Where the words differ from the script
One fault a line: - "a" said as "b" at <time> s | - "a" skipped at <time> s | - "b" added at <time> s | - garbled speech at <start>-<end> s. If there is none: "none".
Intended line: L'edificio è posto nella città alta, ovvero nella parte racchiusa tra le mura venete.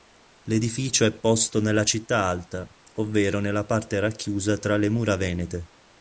none